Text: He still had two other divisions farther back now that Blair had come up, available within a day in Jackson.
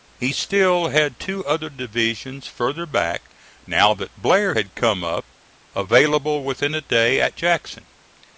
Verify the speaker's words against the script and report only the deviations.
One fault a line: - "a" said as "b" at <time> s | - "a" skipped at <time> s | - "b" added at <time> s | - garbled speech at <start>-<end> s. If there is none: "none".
- "in" said as "at" at 7.2 s